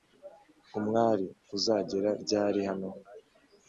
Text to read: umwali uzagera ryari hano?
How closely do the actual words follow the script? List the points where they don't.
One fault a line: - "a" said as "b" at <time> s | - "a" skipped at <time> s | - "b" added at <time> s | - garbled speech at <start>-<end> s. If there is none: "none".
none